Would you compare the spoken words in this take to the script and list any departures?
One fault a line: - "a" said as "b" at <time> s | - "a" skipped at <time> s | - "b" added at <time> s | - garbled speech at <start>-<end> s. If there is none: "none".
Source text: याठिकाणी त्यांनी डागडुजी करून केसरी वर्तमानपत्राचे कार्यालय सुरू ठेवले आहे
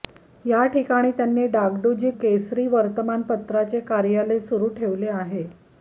- "करून" skipped at 2.1 s